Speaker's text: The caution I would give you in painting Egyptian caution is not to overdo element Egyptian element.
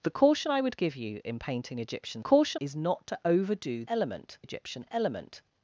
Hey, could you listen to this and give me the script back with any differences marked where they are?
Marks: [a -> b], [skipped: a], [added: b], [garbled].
The caution I would give you in painting Egyptian caution is not to overdo element Egyptian element.